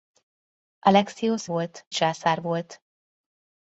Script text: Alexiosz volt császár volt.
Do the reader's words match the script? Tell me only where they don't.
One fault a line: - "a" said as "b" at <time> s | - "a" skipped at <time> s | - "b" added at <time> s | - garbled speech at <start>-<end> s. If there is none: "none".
none